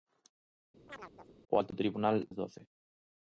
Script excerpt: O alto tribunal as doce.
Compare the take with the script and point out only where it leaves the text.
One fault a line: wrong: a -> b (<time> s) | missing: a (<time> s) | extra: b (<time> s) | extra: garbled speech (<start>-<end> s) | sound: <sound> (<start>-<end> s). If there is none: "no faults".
sound: chirp (0.9-1.3 s)